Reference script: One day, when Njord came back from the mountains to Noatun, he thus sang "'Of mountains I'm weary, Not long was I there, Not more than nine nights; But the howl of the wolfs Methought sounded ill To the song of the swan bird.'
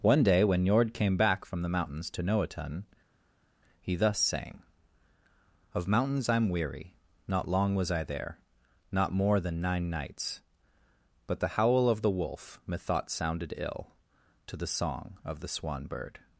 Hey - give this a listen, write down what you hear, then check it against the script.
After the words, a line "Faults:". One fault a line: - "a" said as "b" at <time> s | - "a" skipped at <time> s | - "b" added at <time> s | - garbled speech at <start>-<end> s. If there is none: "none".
One day, when Njord came back from the mountains to Noatun, he thus sang "'Of mountains I'm weary, Not long was I there, Not more than nine nights; But the howl of the wolf Methought sounded ill To the song of the swan bird.'
Faults:
- "wolfs" said as "wolf" at 12.1 s